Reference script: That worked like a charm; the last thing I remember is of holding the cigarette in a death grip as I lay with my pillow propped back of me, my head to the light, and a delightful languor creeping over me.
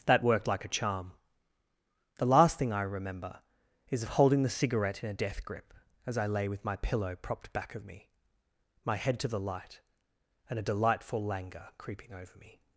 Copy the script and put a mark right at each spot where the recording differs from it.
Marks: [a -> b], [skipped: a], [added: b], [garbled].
That worked like a charm; the last thing I remember is of holding the cigarette in a death grip as I lay with my pillow propped back of me, my head to the light, and a delightful languor creeping over me.